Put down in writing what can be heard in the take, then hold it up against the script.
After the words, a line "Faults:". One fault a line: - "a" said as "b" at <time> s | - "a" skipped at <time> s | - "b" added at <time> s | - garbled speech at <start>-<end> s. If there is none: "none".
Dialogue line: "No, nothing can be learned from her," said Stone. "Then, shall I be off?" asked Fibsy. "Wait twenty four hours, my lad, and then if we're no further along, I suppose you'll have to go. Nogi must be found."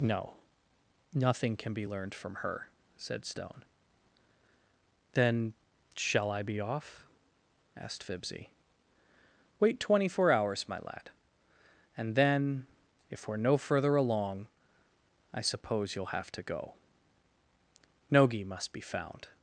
"No, nothing can be learned from her," said Stone. "Then, shall I be off?" asked Fibsy. "Wait twenty four hours, my lad, and then if we're no further along, I suppose you'll have to go. Nogi must be found."
Faults:
none